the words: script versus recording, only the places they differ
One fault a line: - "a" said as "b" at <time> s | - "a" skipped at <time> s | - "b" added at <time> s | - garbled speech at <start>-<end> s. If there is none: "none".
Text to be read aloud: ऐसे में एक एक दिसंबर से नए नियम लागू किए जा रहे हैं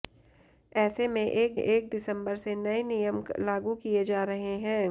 none